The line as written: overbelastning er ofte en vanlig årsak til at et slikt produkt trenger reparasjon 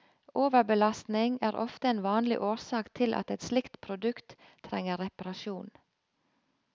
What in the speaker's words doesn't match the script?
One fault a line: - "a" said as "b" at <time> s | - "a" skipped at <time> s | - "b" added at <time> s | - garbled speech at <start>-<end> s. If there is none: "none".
none